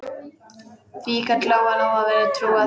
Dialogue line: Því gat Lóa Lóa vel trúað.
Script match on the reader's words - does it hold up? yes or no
yes